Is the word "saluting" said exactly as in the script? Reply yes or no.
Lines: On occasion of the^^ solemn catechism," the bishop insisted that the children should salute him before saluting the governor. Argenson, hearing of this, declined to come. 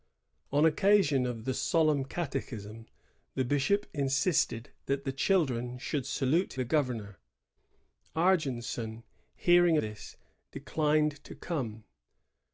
no